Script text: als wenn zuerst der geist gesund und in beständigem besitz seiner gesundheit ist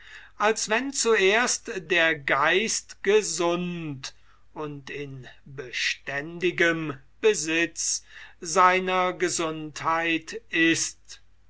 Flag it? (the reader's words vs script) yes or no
no